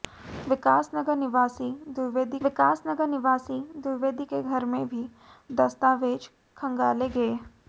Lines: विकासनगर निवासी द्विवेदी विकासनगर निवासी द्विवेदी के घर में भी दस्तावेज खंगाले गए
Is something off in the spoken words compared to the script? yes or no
no